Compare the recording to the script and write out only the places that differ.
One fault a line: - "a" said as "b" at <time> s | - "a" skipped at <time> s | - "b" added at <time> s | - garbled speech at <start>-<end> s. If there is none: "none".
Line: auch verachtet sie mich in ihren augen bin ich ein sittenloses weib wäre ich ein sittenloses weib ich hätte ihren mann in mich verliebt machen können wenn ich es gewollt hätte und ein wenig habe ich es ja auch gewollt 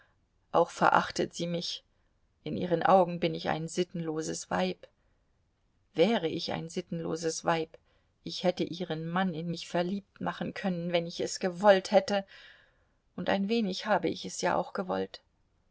none